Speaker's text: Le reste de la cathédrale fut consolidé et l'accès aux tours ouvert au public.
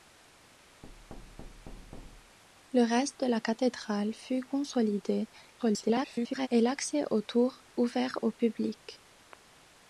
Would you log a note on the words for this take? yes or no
yes